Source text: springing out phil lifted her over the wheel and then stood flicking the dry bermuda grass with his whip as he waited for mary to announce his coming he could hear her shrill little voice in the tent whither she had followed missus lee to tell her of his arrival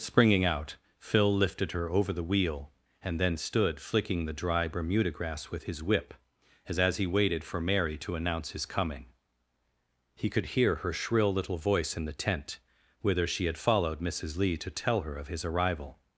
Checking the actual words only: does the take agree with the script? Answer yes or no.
no